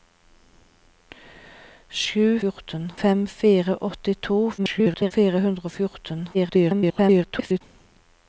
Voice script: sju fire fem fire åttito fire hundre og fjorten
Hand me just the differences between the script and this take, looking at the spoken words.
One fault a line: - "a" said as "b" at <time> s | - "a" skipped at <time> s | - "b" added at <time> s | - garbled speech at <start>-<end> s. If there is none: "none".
- "fire" said as "fjorten" at 2.4 s
- garbled speech at 4.6-5.1 s
- garbled speech at 6.3-7.6 s